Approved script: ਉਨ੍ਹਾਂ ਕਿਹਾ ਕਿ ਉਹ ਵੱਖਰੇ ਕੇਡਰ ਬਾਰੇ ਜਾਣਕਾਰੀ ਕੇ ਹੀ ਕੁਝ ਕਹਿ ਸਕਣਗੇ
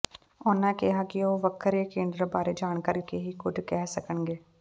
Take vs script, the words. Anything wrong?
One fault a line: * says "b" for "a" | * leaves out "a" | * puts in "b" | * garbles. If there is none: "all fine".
all fine